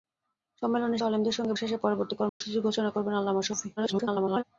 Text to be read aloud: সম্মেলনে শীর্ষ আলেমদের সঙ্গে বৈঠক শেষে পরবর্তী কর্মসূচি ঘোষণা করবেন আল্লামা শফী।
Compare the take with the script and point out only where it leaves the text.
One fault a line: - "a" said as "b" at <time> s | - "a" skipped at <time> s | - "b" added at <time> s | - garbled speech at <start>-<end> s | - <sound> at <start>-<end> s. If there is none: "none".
- "শীর্ষ" skipped at 1.0 s
- "বৈঠক" skipped at 1.6 s
- dropout at 2.3-2.4 s
- garbled speech at 3.8-4.4 s